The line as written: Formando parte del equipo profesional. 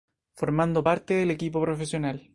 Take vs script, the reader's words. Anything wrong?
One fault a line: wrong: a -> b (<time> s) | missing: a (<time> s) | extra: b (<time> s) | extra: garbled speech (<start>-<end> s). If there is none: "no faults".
no faults